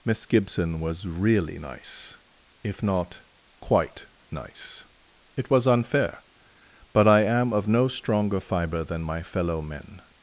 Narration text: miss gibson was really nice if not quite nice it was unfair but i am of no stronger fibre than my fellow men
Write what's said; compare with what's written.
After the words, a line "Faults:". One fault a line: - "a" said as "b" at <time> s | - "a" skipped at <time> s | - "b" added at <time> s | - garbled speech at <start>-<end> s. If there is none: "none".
miss gibson was really nice if not quite nice it was unfair but i am of no stronger fibre than my fellow men
Faults:
none